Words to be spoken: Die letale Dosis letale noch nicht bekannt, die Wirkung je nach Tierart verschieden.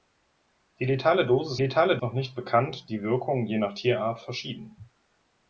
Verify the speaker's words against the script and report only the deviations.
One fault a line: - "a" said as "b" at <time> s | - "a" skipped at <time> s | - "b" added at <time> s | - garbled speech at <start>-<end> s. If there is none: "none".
none